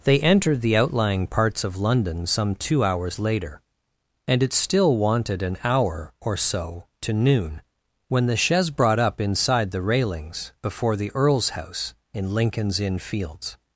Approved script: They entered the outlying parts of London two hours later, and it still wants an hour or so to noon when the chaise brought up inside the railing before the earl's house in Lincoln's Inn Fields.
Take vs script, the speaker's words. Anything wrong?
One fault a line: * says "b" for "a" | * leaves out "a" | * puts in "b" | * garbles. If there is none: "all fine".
* puts in "some"
* says "wanted" for "wants"
* says "railings" for "railing"